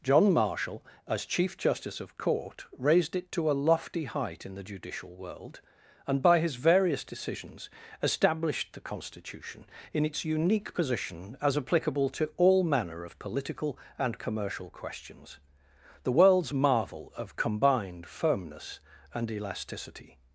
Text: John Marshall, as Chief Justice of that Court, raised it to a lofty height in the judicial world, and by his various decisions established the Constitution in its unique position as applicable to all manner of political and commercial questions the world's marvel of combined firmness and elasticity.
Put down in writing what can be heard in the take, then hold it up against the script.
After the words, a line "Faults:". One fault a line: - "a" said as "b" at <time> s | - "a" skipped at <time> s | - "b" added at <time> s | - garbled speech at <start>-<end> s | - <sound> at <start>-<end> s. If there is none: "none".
John Marshall, as Chief Justice of Court, raised it to a lofty height in the judicial world, and by his various decisions established the Constitution in its unique position as applicable to all manner of political and commercial questions the world's marvel of combined firmness and elasticity.
Faults:
- "that" skipped at 2.2 s